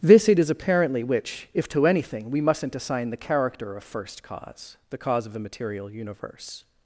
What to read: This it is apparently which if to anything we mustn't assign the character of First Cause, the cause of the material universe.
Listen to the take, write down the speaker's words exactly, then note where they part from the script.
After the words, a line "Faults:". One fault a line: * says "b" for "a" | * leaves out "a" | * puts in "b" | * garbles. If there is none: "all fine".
This it is apparently which if to anything we mustn't assign the character of First Cause, the cause of the material universe.
Faults:
all fine